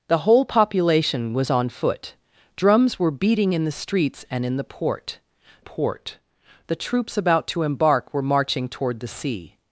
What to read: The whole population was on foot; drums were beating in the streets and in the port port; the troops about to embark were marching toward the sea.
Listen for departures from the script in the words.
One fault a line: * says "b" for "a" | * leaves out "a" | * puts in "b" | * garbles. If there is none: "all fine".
all fine